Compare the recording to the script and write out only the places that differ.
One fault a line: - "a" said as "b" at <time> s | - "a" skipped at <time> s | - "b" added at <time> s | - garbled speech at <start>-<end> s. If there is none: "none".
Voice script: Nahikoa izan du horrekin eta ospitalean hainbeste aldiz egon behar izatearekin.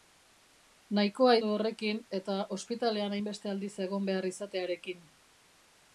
- "izan" skipped at 1.4 s